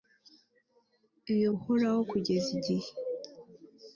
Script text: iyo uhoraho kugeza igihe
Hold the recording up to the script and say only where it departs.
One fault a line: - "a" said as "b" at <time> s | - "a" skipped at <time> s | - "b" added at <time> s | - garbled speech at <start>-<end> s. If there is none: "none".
none